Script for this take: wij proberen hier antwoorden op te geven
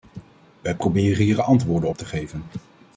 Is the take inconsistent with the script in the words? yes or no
no